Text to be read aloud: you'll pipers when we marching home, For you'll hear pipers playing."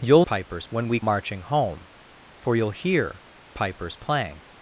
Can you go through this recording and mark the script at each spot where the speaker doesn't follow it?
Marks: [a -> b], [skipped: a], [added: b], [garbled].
you'll pipers when we marching home, For you'll hear pipers playing."